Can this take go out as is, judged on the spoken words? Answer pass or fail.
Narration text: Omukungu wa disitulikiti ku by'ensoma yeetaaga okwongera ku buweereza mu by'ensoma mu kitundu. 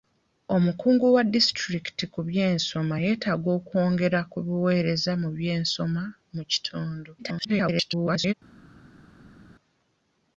fail